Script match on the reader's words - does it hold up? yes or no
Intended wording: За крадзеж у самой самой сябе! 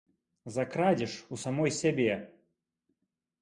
no